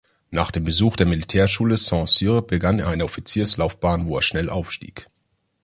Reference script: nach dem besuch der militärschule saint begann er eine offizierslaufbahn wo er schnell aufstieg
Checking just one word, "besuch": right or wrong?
right